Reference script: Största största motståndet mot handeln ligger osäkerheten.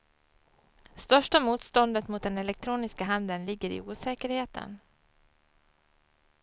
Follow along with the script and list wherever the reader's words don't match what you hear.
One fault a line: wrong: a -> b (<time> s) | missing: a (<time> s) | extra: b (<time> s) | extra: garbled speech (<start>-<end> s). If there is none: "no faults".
missing: största (1.4 s)
extra: den elektroniska (2.2 s)
extra: i (3.7 s)